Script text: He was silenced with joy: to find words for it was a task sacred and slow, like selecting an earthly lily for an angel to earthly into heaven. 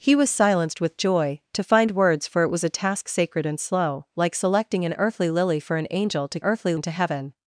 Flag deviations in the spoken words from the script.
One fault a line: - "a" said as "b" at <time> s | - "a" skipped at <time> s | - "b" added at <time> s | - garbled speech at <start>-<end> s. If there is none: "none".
none